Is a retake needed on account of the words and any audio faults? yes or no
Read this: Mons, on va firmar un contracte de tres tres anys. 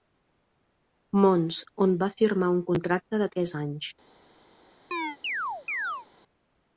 yes